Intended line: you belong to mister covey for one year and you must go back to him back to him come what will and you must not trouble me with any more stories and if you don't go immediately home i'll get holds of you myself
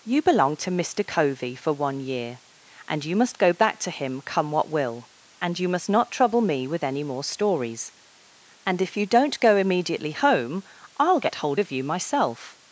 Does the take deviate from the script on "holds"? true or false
true